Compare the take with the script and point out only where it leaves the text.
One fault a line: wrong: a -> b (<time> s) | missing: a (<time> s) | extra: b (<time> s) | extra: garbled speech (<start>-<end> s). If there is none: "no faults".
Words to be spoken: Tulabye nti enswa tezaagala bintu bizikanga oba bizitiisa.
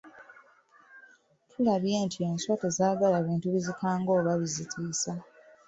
no faults